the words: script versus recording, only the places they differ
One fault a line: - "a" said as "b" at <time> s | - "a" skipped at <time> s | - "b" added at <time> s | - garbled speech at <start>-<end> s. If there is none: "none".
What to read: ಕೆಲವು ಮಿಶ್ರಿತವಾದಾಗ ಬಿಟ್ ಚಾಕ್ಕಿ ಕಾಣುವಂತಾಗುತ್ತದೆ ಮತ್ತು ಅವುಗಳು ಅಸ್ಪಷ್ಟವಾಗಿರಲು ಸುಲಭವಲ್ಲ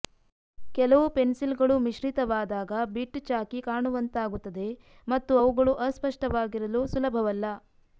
- "ಪೆನ್ಸಿಲ್ಗಳು" added at 1.1 s